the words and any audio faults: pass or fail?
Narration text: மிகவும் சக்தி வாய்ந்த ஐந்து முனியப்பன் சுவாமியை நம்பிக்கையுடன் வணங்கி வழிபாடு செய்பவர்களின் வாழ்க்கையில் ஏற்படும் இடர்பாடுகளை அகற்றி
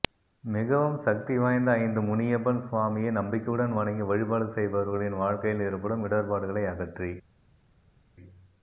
pass